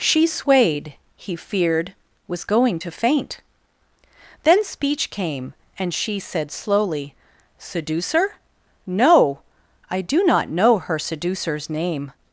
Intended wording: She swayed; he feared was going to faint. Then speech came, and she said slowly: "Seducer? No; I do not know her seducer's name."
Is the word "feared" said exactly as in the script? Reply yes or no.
yes